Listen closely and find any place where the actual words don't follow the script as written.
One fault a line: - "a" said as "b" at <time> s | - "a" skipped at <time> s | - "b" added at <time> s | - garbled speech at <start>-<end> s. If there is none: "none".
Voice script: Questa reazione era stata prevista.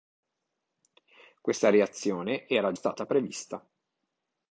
none